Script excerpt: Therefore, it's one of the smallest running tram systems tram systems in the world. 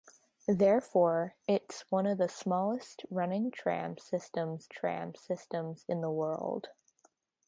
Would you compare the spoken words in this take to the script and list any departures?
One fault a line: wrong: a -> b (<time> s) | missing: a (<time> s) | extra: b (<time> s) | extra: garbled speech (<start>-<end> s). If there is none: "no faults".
no faults